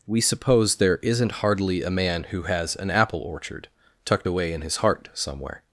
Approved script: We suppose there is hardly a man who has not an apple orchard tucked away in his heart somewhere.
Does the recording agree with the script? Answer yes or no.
no